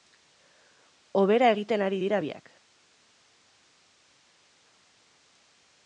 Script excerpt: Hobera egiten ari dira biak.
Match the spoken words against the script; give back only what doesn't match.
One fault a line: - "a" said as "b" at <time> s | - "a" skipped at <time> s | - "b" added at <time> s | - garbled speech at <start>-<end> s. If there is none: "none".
none